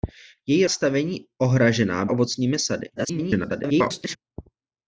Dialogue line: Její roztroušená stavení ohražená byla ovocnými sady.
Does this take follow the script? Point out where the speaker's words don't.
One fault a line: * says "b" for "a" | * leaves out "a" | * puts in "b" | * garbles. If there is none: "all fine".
* leaves out "roztroušená"
* leaves out "byla"
* garbles